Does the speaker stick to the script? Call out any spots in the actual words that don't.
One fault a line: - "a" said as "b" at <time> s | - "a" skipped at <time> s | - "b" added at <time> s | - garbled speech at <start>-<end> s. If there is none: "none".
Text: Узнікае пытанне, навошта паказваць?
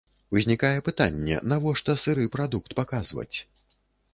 - "сыры прадукт" added at 2.0 s